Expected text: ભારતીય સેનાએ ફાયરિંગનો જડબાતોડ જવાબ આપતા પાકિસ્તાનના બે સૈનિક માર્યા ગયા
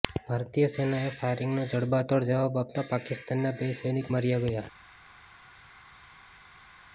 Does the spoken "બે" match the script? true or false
true